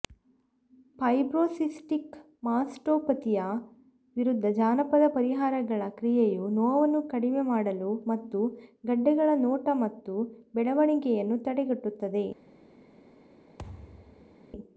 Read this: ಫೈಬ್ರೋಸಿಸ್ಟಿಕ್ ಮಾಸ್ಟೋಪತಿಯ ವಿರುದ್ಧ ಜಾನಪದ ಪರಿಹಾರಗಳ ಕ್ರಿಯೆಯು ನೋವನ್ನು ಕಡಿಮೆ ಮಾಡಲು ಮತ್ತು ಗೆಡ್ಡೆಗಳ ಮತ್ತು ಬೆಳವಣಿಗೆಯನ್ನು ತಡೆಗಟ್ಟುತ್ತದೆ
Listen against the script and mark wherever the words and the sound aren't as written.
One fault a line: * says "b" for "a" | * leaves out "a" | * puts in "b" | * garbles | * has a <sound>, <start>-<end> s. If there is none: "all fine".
* puts in "ನೋಟ"
* has a thud, 13.6-14.4 s